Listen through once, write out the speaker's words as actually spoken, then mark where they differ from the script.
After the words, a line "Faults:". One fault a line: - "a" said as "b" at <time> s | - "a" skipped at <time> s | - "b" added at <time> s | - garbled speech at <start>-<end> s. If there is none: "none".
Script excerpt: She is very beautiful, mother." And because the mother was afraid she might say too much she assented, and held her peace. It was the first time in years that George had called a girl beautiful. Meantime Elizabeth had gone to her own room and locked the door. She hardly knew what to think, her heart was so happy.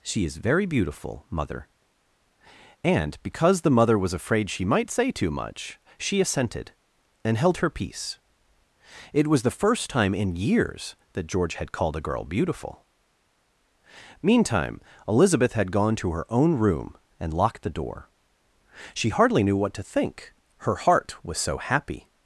She is very beautiful, mother." And because the mother was afraid she might say too much she assented, and held her peace. It was the first time in years that George had called a girl beautiful. Meantime Elizabeth had gone to her own room and locked the door. She hardly knew what to think, her heart was so happy.
Faults:
none